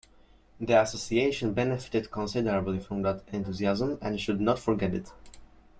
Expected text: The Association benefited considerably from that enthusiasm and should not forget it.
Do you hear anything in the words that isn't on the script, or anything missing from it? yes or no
no